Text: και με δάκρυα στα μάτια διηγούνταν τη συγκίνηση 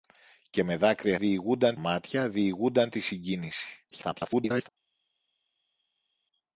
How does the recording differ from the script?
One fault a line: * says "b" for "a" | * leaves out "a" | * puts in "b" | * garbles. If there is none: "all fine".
* says "διηγούνταν" for "στα"
* garbles